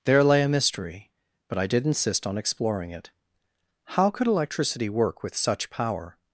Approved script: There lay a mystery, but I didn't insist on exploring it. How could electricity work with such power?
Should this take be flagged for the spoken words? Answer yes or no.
yes